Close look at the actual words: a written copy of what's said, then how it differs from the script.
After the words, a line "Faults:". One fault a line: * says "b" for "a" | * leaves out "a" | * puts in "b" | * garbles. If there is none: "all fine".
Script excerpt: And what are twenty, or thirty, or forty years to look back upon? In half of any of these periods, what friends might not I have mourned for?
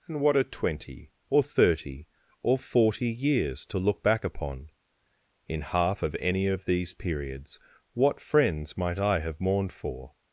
And what are twenty, or thirty, or forty years to look back upon? In half of any of these periods, what friends might I have mourned for?
Faults:
* leaves out "not"